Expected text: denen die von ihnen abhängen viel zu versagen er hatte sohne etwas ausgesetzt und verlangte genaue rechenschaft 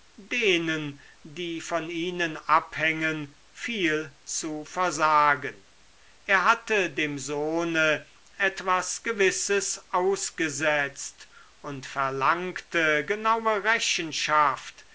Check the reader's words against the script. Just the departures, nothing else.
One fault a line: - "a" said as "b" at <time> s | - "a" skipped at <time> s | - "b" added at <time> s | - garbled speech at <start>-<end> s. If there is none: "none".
- "dem" added at 6.9 s
- "gewisses" added at 9.0 s